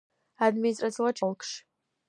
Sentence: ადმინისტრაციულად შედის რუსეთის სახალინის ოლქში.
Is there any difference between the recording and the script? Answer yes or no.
yes